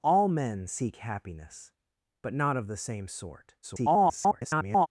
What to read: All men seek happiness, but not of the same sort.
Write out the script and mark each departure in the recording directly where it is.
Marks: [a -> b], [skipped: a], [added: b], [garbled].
All men seek happiness, but not of the same sort. [garbled]